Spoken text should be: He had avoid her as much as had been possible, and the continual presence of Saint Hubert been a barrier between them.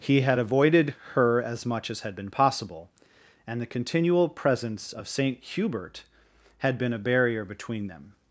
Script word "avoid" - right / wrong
wrong